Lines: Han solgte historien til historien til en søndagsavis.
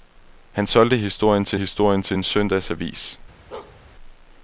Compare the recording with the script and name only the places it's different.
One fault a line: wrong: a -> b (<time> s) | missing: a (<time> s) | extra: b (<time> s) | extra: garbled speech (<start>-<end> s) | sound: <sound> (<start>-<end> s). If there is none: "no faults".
sound: bark (3.5-3.8 s)